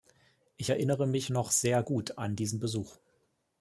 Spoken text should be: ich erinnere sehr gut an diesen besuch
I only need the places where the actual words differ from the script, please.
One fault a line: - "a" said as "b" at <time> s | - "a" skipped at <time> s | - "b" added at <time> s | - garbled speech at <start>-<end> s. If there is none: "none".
- "mich noch" added at 1.1 s